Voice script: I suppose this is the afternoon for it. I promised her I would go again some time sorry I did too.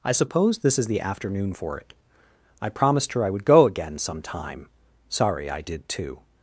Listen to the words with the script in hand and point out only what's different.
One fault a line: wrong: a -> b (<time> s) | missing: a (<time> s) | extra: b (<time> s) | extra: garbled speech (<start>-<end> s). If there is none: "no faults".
no faults